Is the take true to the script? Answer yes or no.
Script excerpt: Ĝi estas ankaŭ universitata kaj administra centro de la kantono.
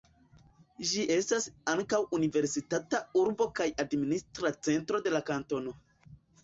no